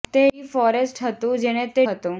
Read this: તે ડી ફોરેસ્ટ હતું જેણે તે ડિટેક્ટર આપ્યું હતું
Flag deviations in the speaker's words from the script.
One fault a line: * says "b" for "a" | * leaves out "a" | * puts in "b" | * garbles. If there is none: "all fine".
* leaves out "ડિટેક્ટર આપ્યું"